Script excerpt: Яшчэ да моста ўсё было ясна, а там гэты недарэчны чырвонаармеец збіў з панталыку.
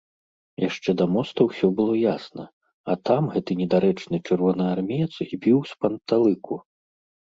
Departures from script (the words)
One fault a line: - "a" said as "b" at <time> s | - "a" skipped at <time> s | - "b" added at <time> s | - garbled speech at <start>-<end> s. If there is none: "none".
none